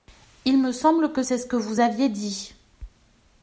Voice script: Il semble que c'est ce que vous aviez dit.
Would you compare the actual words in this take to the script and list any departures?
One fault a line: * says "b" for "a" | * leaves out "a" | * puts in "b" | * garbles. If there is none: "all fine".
* puts in "me"